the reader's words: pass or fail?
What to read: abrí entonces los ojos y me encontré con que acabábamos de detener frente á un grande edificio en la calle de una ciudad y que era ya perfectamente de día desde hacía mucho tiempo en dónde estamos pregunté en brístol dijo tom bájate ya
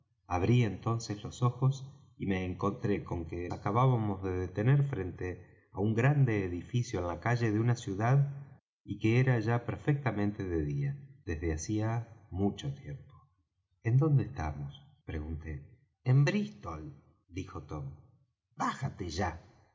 pass